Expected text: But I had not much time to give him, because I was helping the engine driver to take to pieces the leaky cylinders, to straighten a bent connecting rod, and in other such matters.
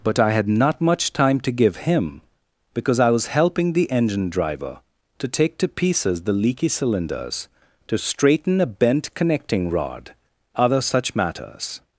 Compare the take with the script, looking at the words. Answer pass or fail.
fail